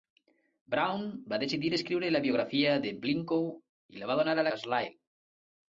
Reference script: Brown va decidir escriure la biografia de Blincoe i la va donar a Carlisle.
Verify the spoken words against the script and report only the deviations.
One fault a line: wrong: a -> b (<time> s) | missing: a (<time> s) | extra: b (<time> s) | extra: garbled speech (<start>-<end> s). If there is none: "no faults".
no faults